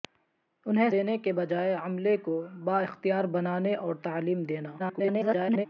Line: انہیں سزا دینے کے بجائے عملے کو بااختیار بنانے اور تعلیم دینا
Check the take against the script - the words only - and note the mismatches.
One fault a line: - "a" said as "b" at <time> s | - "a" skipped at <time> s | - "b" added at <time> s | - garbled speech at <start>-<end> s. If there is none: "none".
- "سزا" skipped at 0.9 s
- garbled speech at 4.8-5.7 s